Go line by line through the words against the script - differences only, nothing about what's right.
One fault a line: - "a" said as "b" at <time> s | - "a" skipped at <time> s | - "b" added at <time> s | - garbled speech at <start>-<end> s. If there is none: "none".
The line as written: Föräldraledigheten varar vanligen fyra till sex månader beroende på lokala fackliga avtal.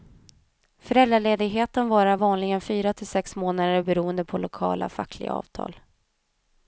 none